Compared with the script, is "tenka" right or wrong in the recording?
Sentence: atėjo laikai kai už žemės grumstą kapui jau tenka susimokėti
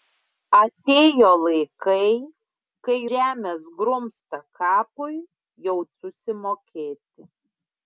wrong